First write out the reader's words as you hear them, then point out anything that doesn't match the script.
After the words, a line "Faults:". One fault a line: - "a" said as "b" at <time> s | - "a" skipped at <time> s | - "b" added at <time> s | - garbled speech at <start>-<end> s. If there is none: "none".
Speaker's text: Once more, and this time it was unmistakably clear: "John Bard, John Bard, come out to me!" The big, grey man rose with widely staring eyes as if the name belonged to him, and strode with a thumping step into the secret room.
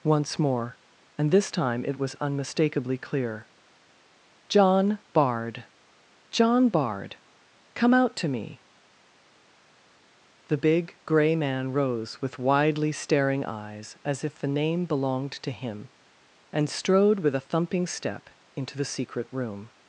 Once more, and this time it was unmistakably clear: "John Bard, John Bard, come out to me!" The big, grey man rose with widely staring eyes as if the name belonged to him, and strode with a thumping step into the secret room.
Faults:
none